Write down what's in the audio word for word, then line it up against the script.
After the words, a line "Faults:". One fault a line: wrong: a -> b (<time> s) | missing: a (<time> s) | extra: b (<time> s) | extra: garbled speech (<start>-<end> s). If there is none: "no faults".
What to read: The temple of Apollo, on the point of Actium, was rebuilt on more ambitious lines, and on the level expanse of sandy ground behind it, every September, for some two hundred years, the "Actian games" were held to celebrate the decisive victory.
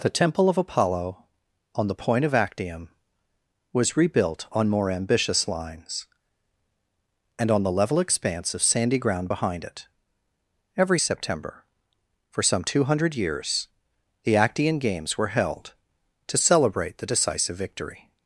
The temple of Apollo, on the point of Actium, was rebuilt on more ambitious lines, and on the level expanse of sandy ground behind it, every September, for some two hundred years, the "Actian games" were held to celebrate the decisive victory.
Faults:
no faults